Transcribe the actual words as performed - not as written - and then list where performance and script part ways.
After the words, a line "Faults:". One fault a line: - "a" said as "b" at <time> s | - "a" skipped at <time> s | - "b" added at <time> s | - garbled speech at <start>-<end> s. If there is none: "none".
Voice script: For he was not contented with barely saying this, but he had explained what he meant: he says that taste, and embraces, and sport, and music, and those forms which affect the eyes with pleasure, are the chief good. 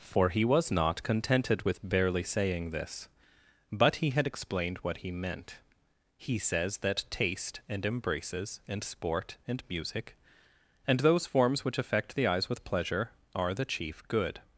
For he was not contented with barely saying this, but he had explained what he meant: he says that taste, and embraces, and sport, and music, and those forms which affect the eyes with pleasure, are the chief good.
Faults:
none